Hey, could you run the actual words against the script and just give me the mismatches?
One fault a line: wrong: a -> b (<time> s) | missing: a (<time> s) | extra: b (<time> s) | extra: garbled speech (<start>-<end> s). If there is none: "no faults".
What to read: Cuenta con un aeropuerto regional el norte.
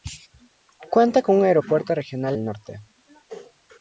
no faults